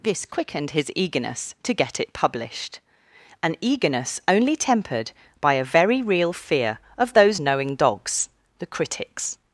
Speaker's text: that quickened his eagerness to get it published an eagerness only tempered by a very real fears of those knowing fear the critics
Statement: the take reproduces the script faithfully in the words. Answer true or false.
false